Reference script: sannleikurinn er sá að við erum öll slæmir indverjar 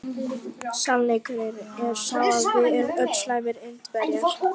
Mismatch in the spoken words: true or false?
false